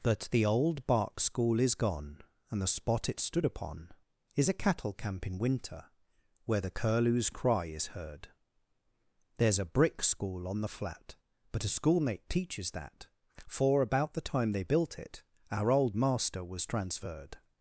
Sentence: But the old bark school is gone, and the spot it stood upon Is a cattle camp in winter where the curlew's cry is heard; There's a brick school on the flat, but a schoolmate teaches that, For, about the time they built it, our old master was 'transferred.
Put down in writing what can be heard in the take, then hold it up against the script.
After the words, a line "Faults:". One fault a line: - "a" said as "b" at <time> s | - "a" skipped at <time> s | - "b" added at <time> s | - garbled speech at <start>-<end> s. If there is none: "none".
That the old bark school is gone, and the spot it stood upon Is a cattle camp in winter where the curlew's cry is heard; There's a brick school on the flat, but a schoolmate teaches that, For, about the time they built it, our old master was 'transferred.
Faults:
- "But" said as "That" at 0.0 s